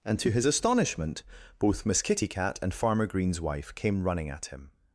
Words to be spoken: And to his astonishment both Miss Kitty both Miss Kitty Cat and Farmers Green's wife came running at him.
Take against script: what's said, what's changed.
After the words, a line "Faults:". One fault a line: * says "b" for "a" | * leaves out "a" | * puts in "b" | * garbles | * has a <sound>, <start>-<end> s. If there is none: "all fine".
And to his astonishment both Miss Kitty Cat and Farmer Green's wife came running at him.
Faults:
* leaves out "both Miss Kitty"
* says "Farmer" for "Farmers"